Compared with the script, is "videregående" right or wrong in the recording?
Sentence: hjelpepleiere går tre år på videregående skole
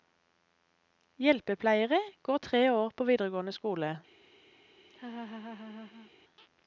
right